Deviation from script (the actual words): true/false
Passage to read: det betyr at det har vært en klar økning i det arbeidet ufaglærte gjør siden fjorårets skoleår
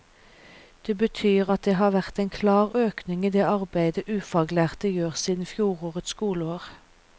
false